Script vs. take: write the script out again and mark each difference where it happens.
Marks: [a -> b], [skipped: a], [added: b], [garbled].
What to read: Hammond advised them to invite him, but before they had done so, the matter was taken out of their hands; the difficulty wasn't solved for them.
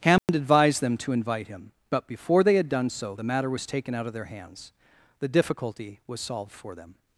Hammond advised them to invite him, but before they had done so, the matter was taken out of their hands; the difficulty [wasn't -> was] solved for them.